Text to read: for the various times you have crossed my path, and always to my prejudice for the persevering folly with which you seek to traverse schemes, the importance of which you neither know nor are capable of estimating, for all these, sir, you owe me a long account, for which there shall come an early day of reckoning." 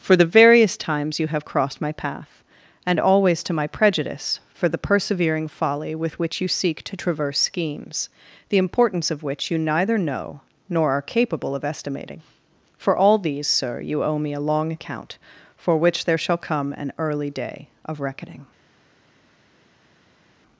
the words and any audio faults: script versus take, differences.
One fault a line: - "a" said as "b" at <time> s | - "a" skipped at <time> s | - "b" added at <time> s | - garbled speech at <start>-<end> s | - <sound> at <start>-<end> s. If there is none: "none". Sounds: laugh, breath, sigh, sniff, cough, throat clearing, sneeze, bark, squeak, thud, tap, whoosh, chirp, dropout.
none